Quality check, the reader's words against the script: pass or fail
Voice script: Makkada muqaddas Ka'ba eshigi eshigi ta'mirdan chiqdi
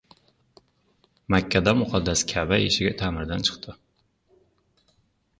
fail